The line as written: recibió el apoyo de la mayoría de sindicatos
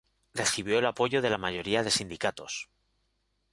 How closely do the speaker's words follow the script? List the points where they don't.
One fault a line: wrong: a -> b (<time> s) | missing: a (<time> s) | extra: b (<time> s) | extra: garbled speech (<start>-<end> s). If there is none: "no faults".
no faults